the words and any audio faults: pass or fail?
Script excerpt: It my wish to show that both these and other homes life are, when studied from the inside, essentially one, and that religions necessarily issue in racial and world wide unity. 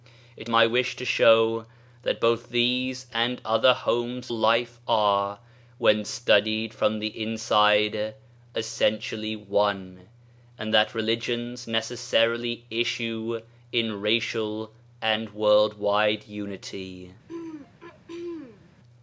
fail